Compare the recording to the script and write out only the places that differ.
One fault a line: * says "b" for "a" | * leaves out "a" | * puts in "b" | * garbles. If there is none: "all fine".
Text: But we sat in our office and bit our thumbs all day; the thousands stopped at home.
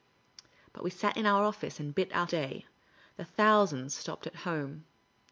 * leaves out "thumbs all"